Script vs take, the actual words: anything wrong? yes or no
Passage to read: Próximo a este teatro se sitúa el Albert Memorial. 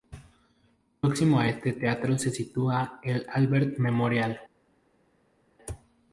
no